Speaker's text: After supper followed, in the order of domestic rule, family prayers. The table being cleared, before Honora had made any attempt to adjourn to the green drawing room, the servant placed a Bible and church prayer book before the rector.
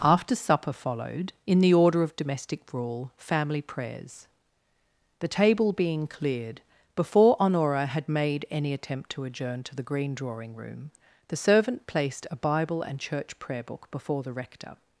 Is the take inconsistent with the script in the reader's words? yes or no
no